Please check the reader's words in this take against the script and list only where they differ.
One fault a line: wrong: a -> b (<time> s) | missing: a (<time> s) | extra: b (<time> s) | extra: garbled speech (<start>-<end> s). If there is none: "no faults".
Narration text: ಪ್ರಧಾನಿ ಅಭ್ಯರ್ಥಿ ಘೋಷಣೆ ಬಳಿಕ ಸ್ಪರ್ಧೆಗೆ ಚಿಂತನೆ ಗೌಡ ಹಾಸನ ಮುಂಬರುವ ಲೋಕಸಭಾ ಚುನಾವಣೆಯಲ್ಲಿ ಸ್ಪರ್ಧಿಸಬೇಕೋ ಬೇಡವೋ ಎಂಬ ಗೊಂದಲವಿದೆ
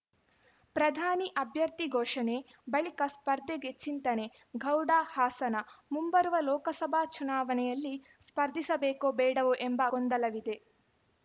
no faults